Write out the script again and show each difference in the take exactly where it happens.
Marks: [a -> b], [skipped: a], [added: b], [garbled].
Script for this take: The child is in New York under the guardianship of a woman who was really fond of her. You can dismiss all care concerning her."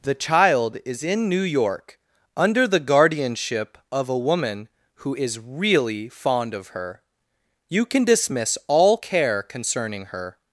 The child is in New York under the guardianship of a woman who [was -> is] really fond of her. You can dismiss all care concerning her."